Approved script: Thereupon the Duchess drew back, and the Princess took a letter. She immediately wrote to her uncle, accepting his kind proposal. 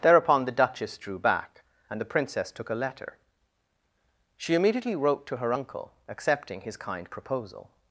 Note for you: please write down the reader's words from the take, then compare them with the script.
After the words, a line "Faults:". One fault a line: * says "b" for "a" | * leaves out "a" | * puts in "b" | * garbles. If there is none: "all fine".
Thereupon the Duchess drew back, and the Princess took a letter. She immediately wrote to her uncle, accepting his kind proposal.
Faults:
all fine